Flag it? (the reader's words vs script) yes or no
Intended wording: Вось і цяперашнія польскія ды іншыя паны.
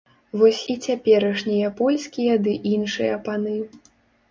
no